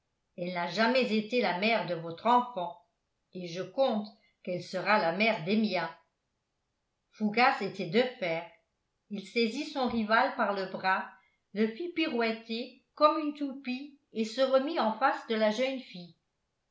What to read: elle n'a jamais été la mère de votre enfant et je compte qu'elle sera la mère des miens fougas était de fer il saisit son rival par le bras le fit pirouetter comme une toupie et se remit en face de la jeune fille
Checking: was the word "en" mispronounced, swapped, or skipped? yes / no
no